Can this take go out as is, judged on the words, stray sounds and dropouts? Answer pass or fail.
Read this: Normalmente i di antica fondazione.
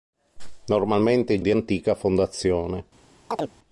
fail